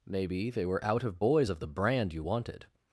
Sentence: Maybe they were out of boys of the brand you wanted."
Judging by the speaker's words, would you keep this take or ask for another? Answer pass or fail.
pass